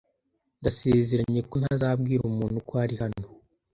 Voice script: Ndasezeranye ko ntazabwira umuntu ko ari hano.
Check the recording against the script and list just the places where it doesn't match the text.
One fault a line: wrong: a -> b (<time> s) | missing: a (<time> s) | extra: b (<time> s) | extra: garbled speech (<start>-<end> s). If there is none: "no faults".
no faults